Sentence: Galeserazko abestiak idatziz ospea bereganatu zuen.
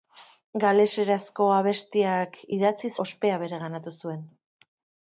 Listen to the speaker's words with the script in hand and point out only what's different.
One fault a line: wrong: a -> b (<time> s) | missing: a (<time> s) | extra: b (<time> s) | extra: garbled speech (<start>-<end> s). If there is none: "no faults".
no faults